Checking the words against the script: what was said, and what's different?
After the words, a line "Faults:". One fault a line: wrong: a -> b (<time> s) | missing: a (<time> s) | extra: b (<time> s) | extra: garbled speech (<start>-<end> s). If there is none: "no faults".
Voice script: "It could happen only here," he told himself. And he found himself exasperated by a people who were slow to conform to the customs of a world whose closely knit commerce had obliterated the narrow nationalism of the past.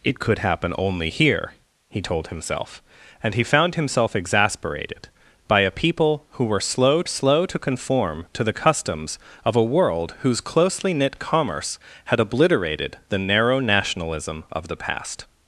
"It could happen only here," he told himself. And he found himself exasperated by a people who were slow slow to conform to the customs of a world whose closely knit commerce had obliterated the narrow nationalism of the past.
Faults:
extra: slow (7.1 s)